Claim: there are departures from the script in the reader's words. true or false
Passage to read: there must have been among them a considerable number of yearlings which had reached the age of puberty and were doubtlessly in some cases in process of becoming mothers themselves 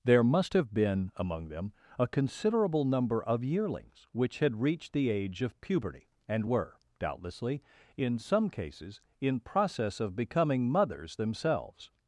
false